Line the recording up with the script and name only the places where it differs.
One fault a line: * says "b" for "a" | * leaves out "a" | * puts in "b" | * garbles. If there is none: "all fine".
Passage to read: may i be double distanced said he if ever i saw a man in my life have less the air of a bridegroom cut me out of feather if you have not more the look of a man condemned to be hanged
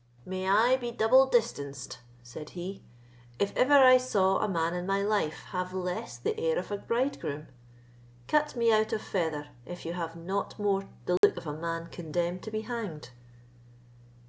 all fine